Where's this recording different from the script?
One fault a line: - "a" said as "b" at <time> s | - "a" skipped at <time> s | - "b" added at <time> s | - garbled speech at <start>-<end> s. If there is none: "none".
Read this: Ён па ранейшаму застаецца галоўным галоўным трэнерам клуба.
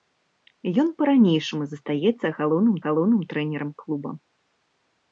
none